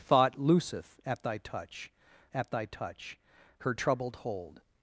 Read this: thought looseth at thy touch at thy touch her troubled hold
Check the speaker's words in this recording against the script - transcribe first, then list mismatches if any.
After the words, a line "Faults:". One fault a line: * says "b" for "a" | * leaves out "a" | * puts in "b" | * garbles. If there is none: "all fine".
thought looseth at thy touch at thy touch her troubled hold
Faults:
all fine